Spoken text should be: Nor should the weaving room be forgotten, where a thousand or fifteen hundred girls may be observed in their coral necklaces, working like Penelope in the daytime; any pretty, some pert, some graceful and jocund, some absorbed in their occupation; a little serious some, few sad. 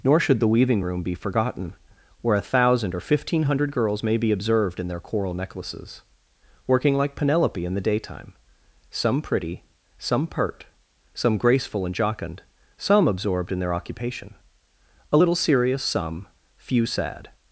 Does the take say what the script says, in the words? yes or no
no